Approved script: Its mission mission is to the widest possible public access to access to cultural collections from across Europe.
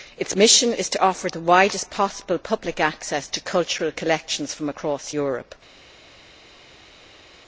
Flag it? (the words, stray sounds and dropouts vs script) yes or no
yes